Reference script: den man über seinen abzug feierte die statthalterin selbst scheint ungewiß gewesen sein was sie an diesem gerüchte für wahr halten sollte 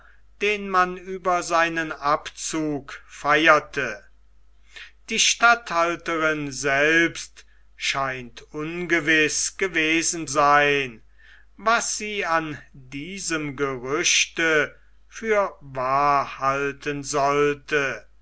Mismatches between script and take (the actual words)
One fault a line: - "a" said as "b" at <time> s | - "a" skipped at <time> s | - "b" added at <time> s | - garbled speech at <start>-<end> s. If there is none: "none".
none